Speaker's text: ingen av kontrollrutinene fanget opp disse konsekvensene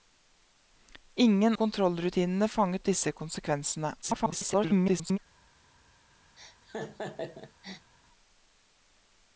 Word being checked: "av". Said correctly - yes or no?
no